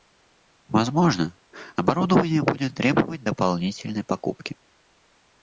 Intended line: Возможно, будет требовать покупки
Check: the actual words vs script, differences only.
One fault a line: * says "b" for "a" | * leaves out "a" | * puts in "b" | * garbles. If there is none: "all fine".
* puts in "оборудование"
* puts in "дополнительной"